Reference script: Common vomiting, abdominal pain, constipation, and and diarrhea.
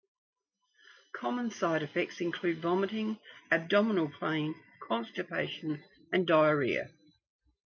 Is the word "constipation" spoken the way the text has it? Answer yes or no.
yes